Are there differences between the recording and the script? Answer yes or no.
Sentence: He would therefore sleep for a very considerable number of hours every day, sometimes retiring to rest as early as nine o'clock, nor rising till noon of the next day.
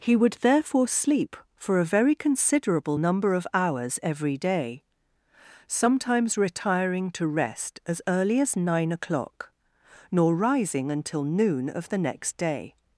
yes